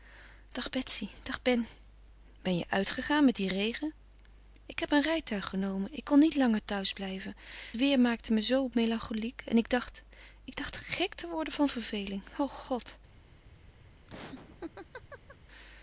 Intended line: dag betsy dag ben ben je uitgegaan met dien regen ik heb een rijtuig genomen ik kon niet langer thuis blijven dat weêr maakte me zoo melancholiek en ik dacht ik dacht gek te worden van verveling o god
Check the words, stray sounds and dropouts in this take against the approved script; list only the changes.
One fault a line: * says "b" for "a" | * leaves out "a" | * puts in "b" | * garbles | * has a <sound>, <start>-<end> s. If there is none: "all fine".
* leaves out "dat"
* has a laugh, 14.1-15.4 s